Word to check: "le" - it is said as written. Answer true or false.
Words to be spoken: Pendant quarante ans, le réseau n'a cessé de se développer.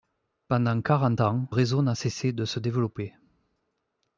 false